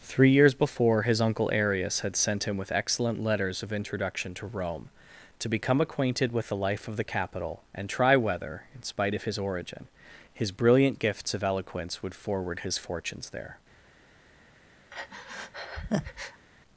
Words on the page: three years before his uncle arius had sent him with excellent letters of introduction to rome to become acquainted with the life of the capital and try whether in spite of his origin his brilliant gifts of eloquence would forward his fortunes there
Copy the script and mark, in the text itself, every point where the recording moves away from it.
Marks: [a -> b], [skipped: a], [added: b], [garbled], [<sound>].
three years before his uncle arius had sent him with excellent letters of introduction to rome to become acquainted with the life of the capital and try whether in spite of his origin his brilliant gifts of eloquence would forward his fortunes there [breath]